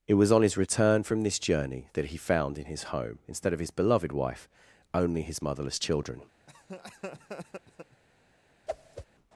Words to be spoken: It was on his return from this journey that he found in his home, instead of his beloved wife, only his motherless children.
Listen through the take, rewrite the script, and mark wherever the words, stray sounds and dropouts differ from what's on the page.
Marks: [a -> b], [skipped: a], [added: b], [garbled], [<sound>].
It was on his return from this journey that he found in his home, instead of his beloved wife, only his motherless children. [laugh] [whoosh]